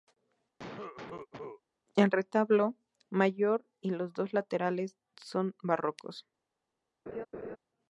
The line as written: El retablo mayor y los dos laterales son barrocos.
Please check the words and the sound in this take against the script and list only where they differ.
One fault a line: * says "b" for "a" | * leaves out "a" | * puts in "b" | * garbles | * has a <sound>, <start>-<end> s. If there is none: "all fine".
* has a cough, 0.6-1.6 s
* has a laugh, 7.1-7.6 s